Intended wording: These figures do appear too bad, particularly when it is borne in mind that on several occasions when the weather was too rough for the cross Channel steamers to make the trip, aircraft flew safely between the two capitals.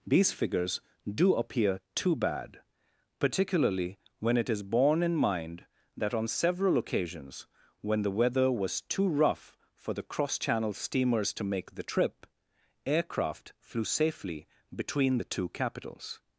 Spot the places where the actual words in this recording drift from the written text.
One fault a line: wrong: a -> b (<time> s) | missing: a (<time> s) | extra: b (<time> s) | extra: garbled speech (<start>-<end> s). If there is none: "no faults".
no faults